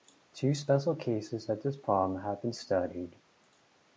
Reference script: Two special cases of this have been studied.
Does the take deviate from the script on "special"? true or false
false